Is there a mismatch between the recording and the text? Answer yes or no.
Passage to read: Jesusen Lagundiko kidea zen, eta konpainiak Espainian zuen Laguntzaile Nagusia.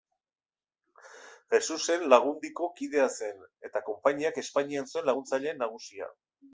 no